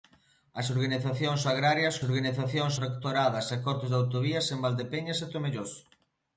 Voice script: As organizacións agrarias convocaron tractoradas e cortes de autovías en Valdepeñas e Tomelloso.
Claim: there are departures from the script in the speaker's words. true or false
true